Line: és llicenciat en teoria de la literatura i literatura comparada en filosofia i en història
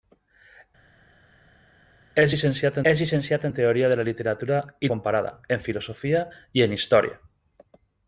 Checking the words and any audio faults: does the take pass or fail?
fail